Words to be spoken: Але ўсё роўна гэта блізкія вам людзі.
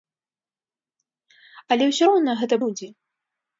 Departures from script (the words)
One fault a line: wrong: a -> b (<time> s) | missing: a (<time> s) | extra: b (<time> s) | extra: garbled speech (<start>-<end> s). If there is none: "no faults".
missing: блізкія вам (2.5 s)